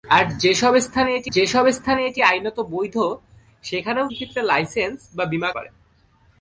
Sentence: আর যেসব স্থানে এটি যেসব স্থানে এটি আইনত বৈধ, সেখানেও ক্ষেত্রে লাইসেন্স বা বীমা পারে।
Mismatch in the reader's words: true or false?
false